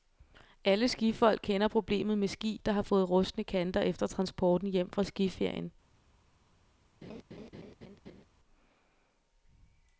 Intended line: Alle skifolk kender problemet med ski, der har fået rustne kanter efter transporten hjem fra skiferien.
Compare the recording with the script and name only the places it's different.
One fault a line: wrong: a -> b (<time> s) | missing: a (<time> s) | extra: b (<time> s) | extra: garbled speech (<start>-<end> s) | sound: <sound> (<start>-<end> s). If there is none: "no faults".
sound: laugh (7.0-8.2 s)